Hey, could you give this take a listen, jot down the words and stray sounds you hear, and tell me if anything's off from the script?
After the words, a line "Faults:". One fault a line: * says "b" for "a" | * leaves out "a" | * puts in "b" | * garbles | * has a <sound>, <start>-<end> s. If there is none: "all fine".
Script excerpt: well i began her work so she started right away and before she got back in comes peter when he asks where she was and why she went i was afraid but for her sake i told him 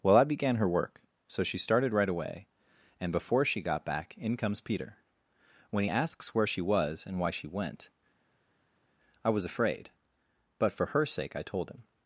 well i began her work so she started right away and before she got back in comes peter when he asks where she was and why she went i was afraid but for her sake i told him
Faults:
all fine